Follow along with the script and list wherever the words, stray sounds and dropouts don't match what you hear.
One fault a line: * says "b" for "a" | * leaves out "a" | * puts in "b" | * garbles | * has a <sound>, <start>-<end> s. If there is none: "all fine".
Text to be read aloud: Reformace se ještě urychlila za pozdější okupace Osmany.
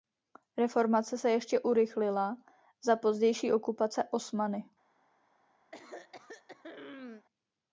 * has a throat clearing, 5.7-7.3 s